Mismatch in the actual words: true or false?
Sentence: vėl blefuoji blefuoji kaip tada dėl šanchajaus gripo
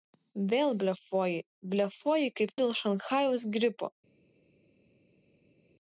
true